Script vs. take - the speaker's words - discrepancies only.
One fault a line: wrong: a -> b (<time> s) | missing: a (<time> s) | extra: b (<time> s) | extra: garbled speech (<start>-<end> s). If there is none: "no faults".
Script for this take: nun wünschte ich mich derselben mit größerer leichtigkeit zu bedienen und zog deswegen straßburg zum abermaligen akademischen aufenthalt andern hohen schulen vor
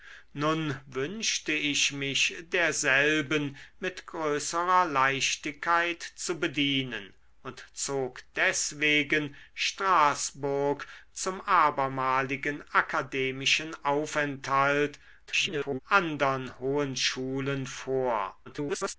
extra: garbled speech (15.3-15.8 s)
extra: garbled speech (18.4-18.9 s)